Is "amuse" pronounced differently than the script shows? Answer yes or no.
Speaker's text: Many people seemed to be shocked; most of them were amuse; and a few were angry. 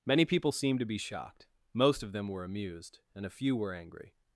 yes